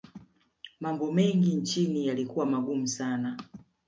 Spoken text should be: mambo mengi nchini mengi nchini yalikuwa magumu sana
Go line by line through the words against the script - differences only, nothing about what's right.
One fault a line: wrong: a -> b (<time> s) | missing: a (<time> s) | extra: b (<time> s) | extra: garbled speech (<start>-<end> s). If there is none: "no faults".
missing: mengi nchini (2.1 s)